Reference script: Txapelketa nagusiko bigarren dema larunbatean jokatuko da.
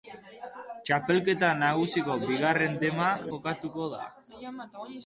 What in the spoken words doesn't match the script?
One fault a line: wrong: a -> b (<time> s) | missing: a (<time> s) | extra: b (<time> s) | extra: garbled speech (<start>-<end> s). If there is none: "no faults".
missing: larunbatean (3.1 s)